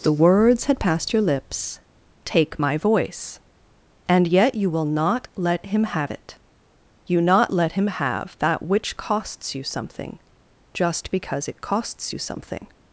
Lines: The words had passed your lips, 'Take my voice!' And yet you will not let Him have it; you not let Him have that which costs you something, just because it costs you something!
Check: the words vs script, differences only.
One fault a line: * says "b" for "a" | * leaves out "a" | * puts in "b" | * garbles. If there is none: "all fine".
all fine